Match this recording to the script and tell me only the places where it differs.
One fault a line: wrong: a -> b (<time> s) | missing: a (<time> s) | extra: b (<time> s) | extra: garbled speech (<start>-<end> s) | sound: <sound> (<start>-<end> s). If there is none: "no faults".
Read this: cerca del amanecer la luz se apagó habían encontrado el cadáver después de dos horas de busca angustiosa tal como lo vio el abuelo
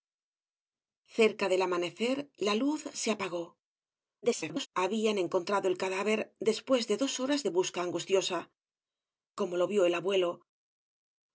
extra: garbled speech (4.2-4.7 s)
missing: tal (8.5 s)